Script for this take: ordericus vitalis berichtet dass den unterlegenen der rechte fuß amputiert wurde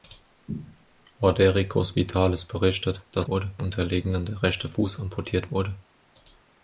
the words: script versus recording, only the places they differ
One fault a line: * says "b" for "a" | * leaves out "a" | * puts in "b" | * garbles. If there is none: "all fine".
* says "wurde" for "den"